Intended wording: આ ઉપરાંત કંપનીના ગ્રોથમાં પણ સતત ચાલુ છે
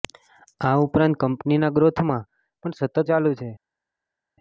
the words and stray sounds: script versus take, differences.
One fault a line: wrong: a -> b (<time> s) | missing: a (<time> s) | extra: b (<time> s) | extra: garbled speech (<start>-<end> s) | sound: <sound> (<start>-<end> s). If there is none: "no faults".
no faults